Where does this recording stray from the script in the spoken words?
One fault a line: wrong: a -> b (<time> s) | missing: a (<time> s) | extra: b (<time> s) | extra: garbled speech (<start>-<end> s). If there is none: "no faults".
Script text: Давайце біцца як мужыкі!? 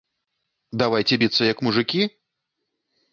no faults